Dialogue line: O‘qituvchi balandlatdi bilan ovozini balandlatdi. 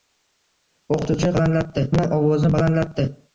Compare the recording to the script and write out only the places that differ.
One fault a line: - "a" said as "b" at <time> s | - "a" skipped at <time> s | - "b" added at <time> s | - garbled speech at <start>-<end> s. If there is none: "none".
none